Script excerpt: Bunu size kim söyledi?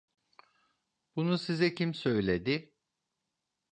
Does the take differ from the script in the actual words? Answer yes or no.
no